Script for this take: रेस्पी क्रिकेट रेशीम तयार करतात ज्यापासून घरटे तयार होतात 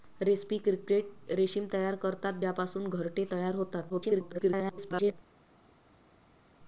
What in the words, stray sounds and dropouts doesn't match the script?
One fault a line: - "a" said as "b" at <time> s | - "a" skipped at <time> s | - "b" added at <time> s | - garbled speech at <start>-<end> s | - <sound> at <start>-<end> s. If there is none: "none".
- garbled speech at 3.9-5.1 s